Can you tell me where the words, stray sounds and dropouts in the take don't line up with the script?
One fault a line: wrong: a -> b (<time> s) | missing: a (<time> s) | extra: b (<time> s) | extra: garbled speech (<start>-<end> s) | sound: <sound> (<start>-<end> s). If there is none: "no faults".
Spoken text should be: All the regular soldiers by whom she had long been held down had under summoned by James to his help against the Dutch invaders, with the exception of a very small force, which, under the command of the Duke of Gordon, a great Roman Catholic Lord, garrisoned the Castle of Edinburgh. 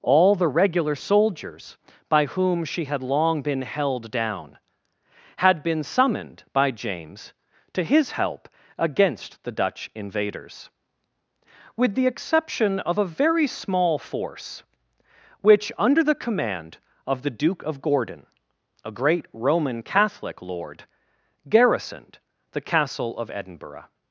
wrong: under -> been (5.6 s)